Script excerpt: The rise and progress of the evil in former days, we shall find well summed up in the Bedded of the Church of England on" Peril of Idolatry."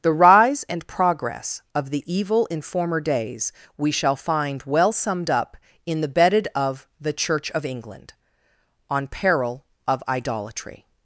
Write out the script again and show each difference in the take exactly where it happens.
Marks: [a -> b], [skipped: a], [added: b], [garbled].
The rise and progress of the evil in former days, we shall find well summed up in the Bedded of the Church of England on" Peril of Idolatry."